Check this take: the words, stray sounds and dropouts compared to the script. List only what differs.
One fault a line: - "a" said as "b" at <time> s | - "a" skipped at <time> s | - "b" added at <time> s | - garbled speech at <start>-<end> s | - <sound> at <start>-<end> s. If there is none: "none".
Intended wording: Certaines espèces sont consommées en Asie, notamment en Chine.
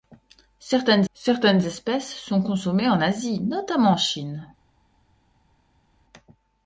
- "certaines" added at 1.1 s